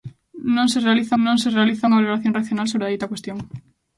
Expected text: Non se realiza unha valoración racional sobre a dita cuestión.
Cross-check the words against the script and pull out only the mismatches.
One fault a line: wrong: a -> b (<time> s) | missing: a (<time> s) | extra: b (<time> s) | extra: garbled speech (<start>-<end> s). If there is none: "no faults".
extra: non se realiza (1.2 s)